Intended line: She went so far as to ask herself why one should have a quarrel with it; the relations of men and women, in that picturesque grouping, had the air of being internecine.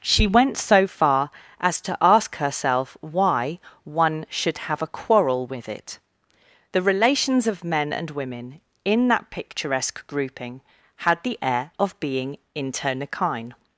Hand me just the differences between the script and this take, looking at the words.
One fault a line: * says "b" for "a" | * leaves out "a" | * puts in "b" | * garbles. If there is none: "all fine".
all fine